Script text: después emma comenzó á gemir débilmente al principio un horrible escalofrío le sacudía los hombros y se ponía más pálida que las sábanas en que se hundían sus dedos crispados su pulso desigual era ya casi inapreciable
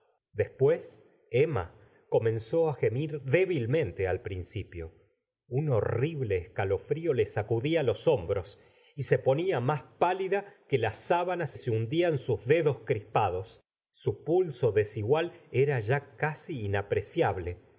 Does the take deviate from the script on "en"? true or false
true